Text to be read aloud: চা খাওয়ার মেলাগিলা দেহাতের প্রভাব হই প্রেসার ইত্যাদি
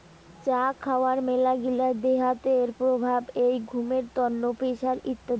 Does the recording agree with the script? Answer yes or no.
no